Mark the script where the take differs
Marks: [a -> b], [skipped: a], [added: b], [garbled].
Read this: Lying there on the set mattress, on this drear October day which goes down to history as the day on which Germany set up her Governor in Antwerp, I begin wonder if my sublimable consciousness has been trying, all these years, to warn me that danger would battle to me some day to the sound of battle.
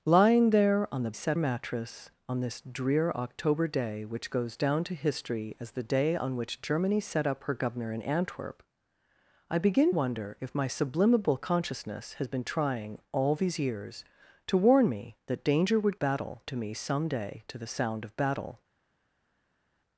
Lying there on the set mattress, on this drear October day which goes down to history as the day on which Germany set up her Governor in Antwerp, I begin wonder if my sublimable consciousness has been trying, all these years, to warn me that danger would battle to me some day to the sound of battle.